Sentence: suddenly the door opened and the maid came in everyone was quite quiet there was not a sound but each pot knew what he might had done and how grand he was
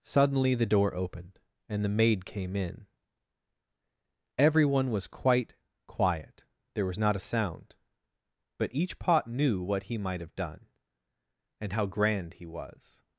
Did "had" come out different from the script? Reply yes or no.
yes